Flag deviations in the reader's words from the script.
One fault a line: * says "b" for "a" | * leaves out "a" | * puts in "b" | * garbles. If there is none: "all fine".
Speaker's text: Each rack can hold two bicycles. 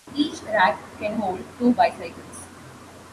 all fine